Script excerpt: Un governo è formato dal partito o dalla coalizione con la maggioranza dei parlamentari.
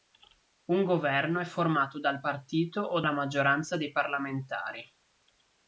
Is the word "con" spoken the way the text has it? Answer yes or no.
no